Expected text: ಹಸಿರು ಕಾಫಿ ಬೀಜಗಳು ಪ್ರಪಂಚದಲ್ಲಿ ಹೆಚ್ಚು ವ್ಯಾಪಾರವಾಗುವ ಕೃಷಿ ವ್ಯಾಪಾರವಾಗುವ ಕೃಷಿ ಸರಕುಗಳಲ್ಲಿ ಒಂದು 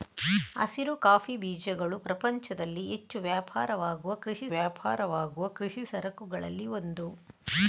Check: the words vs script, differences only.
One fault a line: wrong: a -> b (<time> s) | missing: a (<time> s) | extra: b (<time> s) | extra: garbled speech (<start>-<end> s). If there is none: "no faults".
no faults